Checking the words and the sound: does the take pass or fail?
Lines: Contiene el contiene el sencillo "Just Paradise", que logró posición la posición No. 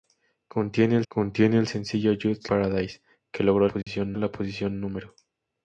fail